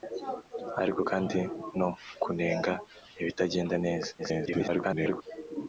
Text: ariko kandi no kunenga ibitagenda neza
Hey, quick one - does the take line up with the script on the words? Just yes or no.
no